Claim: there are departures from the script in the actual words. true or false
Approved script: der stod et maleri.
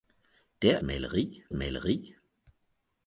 true